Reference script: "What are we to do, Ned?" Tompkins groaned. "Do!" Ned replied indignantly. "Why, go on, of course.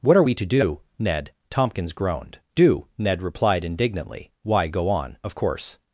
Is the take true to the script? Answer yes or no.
yes